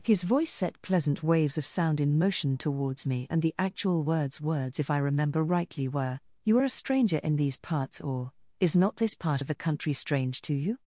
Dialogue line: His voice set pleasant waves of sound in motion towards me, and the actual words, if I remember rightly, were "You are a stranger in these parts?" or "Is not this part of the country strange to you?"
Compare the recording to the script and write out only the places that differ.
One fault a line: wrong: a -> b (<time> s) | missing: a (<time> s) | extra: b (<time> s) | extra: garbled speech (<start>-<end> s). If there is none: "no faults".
extra: words (4.4 s)